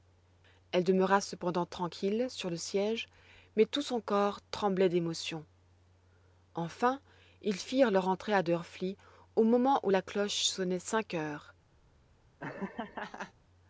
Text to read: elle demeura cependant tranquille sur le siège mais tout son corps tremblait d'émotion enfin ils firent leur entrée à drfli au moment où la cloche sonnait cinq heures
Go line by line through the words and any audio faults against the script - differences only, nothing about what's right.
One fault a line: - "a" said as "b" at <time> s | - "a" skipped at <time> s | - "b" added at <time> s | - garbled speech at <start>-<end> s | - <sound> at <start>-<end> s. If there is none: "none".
- laugh at 12.4-13.3 s